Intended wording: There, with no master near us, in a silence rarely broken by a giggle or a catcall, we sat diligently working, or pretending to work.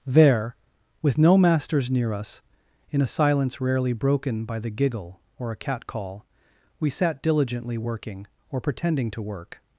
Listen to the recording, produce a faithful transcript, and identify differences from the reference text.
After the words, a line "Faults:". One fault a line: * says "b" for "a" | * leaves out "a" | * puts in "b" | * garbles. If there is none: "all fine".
There, with no masters near us, in a silence rarely broken by the giggle or a catcall, we sat diligently working, or pretending to work.
Faults:
* says "masters" for "master"
* says "the" for "a"